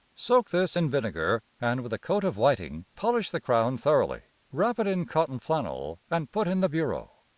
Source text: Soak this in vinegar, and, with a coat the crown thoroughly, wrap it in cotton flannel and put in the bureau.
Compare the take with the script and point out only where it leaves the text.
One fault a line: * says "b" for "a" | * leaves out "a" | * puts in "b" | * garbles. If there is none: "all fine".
* puts in "of whiting polish"